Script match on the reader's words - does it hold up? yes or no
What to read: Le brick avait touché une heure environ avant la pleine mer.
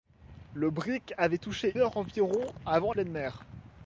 no